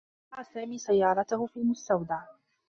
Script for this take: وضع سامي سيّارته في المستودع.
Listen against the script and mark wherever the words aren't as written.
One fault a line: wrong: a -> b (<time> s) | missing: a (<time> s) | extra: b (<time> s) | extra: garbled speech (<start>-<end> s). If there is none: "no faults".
no faults